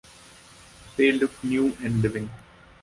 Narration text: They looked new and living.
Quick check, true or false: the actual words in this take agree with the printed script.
true